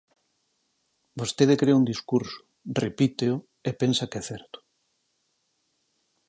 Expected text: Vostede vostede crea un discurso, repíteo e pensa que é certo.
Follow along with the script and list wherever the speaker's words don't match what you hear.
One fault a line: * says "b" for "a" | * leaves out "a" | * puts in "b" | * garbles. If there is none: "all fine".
* leaves out "vostede"